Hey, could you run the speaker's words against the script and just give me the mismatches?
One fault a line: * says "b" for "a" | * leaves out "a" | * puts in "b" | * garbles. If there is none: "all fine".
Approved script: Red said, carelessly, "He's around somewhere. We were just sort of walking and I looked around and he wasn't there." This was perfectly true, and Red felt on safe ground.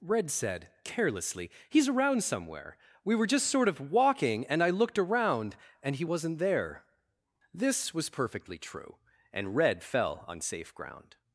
* says "fell" for "felt"